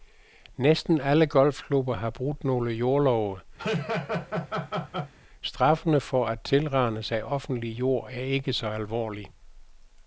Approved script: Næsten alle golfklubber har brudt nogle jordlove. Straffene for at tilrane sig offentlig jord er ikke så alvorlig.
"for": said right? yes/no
yes